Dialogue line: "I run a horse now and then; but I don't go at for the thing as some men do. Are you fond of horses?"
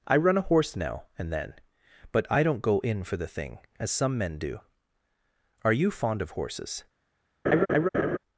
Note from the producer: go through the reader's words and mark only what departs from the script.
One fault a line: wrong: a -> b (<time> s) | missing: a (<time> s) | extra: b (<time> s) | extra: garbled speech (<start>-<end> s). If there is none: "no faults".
wrong: at -> in (2.8 s)